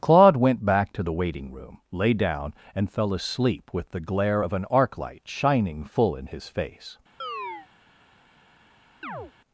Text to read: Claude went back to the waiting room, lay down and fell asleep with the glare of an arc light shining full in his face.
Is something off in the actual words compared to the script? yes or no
no